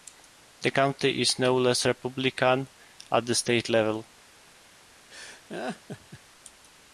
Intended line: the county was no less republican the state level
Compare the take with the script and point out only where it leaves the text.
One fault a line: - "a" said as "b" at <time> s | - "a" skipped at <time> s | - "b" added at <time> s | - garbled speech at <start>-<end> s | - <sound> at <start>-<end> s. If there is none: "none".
- "was" said as "is" at 1.2 s
- "at" added at 3.1 s
- laugh at 5.1-6.2 s